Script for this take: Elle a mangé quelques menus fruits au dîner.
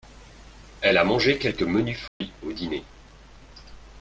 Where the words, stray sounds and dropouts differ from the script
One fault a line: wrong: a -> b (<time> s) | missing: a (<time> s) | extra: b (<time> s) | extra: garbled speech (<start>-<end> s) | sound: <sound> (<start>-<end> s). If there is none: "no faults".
sound: dropout (2.1-2.2 s)